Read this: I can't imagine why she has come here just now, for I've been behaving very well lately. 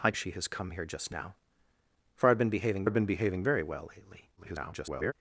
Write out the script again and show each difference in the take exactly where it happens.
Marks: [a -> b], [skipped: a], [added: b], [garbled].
I [skipped: can't imagine why] she has come here just now, for I've been behaving [added: I've been behaving] very well lately. [garbled]